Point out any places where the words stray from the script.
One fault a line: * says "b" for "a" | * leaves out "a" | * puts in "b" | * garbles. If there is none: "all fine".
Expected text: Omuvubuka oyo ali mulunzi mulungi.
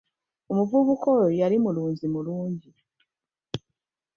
* says "yali" for "ali"